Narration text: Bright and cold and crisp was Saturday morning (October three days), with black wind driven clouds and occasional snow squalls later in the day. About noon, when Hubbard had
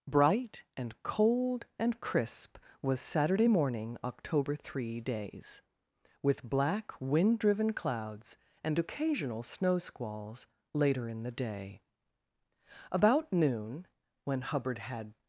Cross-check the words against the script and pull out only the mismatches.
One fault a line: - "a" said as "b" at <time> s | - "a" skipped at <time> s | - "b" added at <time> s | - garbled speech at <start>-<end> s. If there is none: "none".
none